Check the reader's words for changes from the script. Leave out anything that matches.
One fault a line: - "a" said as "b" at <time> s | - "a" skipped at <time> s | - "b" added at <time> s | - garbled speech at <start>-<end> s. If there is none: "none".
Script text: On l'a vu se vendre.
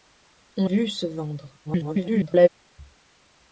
- "l'a" skipped at 0.7 s
- garbled speech at 1.6-2.5 s